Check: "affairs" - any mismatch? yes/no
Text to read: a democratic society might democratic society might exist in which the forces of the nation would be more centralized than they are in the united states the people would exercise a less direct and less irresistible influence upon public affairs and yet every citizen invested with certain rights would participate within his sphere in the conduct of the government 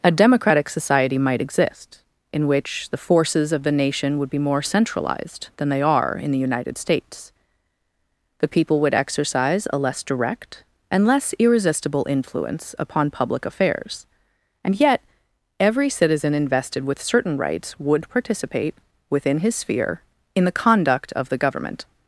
no